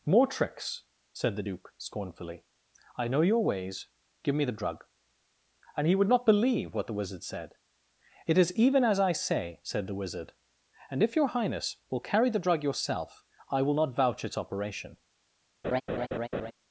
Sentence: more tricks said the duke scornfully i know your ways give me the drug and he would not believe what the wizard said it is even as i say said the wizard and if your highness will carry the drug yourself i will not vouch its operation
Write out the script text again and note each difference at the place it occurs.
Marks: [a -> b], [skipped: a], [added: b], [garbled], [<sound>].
more tricks said the duke scornfully i know your ways give me the drug and he would not believe what the wizard said it is even as i say said the wizard and if your highness will carry the drug yourself i will not vouch its operation [laugh]